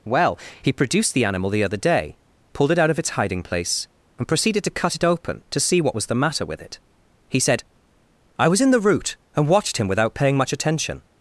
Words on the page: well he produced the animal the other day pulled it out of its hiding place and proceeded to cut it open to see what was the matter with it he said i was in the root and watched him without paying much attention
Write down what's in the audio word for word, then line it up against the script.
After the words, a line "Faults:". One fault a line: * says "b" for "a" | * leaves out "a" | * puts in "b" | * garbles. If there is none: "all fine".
well he produced the animal the other day pulled it out of its hiding place and proceeded to cut it open to see what was the matter with it he said i was in the root and watched him without paying much attention
Faults:
all fine